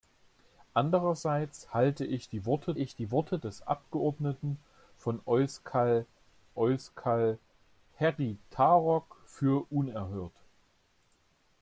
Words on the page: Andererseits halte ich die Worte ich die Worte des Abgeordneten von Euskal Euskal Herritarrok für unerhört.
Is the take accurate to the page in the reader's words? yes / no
yes